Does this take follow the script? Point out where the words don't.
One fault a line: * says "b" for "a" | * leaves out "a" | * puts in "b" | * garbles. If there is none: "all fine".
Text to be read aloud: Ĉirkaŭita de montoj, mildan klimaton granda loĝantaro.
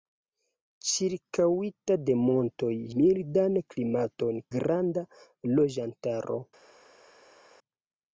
all fine